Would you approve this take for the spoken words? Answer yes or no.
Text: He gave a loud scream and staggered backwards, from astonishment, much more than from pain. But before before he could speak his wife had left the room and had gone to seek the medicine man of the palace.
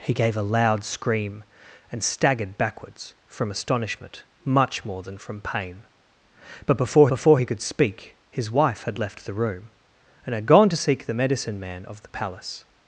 yes